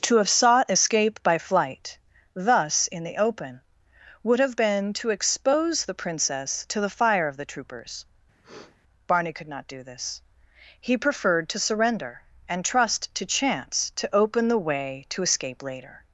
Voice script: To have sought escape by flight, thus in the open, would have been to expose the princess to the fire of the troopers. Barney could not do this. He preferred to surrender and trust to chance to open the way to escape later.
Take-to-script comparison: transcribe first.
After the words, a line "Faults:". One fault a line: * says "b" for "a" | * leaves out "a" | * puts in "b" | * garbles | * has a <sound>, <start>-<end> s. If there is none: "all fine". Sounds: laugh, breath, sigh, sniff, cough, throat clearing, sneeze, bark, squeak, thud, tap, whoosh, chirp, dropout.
To have sought escape by flight, thus in the open, would have been to expose the princess to the fire of the troopers. Barney could not do this. He preferred to surrender and trust to chance to open the way to escape later.
Faults:
* has a sniff, 8.4-8.8 s